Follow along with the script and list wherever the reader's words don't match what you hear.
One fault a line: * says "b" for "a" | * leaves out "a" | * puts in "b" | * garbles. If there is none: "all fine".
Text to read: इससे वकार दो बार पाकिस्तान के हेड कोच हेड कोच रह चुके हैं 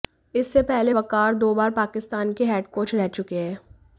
* puts in "पहले"
* leaves out "हेड कोच"